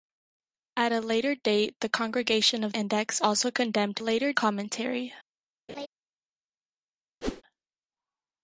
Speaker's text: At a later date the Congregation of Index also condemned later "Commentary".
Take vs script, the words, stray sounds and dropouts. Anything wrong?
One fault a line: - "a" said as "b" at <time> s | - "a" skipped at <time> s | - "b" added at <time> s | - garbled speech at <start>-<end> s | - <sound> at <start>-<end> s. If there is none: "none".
- laugh at 5.7-5.9 s
- whoosh at 7.2-7.4 s